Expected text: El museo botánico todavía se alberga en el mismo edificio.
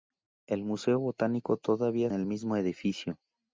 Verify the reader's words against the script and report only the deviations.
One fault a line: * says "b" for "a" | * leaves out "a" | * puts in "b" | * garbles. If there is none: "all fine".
* leaves out "se alberga en"